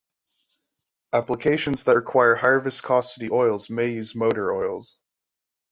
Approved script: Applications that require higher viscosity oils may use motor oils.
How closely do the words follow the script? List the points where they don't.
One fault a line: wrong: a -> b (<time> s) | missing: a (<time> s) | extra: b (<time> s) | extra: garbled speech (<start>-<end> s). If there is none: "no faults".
no faults